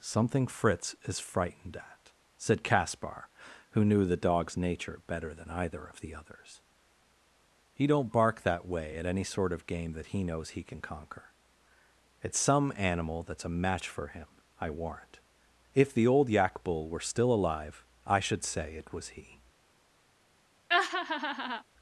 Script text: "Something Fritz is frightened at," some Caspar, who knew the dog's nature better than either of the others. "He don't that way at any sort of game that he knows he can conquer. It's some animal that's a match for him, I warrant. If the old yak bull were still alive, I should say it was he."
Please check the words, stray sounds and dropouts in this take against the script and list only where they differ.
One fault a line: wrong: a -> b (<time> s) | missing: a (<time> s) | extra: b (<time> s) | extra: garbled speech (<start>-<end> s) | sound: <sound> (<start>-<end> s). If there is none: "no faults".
wrong: some -> said (2.4 s)
extra: bark (8.1 s)
sound: laugh (20.7-21.6 s)